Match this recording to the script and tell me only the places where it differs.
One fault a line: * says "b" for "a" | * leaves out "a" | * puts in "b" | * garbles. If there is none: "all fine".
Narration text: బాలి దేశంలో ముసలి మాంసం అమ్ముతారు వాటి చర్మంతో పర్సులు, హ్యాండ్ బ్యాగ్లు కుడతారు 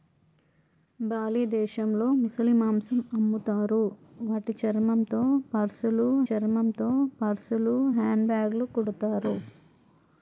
* puts in "చర్మంతో పర్సులు"